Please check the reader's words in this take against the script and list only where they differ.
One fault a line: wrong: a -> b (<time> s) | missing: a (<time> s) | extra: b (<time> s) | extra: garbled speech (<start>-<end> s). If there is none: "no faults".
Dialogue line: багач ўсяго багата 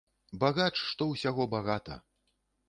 extra: што (0.9 s)